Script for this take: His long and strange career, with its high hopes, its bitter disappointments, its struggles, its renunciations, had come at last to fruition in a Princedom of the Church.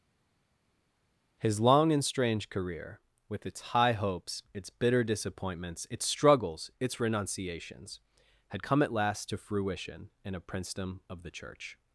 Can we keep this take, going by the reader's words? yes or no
yes